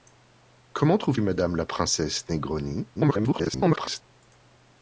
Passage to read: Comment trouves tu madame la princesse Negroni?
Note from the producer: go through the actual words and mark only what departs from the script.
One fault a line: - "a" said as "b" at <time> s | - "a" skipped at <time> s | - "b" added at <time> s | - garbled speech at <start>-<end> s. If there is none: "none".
- "tu" skipped at 1.2 s
- garbled speech at 2.9-4.0 s